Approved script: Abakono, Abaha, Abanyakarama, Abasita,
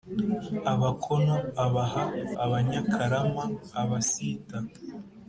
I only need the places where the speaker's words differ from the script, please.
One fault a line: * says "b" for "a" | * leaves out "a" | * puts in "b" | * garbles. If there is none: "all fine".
all fine